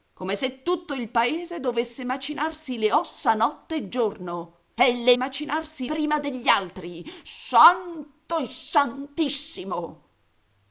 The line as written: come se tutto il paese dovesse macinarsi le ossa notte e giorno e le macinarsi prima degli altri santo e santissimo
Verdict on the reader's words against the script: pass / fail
pass